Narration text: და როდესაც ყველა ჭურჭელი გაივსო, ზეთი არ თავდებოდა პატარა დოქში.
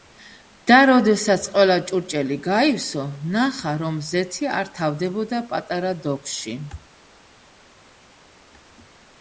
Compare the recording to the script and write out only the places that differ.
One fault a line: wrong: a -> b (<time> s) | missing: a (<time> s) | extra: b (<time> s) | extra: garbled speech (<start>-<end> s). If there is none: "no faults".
extra: ნახა რომ (3.4 s)